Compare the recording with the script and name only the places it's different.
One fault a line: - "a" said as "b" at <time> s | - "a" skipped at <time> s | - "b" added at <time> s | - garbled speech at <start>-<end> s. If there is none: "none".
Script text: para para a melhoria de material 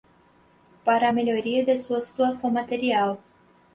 - "para" skipped at 1.1 s
- "sua situação" added at 1.8 s